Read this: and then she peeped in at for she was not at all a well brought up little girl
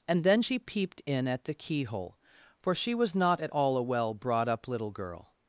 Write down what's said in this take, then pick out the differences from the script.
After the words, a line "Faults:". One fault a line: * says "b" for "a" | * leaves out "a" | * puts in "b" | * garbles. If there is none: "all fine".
and then she peeped in at the keyhole for she was not at all a well brought up little girl
Faults:
* puts in "the keyhole"